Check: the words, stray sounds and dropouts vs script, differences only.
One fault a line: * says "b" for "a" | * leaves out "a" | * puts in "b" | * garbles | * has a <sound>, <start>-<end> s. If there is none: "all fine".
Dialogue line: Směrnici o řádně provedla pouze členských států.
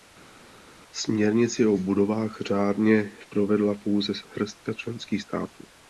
* puts in "budovách"
* puts in "hrstka"